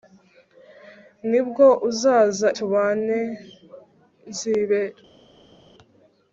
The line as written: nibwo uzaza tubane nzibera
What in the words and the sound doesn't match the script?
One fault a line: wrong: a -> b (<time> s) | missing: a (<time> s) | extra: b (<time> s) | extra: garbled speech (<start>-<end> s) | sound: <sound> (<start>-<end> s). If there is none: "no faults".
no faults